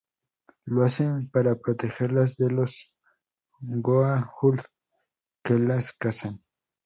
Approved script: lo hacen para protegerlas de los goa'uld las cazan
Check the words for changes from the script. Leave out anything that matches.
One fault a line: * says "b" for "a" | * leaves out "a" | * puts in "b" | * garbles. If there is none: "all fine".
* puts in "que"